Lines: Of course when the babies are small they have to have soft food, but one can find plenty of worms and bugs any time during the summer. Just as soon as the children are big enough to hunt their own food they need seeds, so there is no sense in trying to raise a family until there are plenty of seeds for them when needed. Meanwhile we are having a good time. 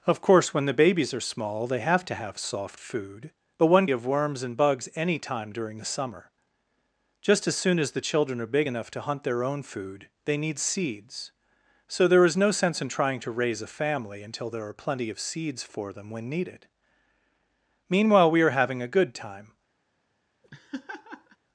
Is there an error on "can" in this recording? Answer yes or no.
yes